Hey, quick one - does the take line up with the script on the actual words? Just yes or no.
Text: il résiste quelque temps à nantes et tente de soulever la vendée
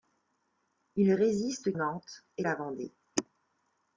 no